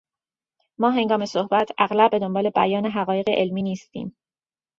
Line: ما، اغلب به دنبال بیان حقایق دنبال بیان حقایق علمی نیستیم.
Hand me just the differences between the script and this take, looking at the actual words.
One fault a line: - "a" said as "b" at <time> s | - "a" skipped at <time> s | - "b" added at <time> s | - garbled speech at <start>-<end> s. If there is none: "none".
- "هنگام صحبت" added at 0.9 s
- "دنبال بیان حقایق" skipped at 3.3 s